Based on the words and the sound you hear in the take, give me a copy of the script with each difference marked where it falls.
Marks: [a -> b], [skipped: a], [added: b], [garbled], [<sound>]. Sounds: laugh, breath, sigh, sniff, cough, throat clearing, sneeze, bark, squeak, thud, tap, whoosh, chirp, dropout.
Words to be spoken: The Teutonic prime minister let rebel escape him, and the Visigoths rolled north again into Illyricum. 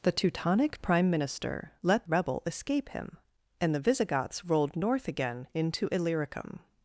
The Teutonic prime minister let rebel escape him, and the Visigoths rolled north again into Illyricum.